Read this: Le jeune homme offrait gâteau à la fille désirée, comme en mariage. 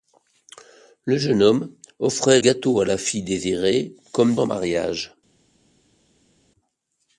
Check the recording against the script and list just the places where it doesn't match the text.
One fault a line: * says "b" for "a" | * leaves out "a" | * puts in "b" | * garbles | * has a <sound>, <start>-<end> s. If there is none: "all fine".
all fine